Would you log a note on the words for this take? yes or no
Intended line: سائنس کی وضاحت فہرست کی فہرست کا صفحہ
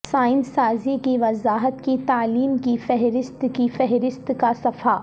yes